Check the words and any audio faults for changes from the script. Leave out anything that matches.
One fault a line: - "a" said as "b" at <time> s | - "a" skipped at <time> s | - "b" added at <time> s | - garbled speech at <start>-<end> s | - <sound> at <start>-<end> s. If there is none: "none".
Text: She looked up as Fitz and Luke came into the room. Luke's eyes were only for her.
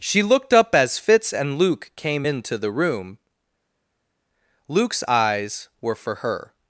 - "only" skipped at 6.0 s